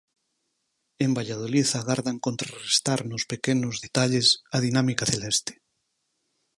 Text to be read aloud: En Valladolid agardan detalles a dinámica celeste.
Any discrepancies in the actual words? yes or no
yes